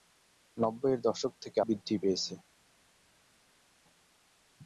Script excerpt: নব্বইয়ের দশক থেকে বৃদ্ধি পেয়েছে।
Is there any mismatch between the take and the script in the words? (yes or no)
no